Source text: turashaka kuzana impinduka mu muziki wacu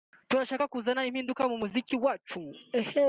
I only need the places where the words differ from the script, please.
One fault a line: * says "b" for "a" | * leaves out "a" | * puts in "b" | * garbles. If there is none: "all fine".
all fine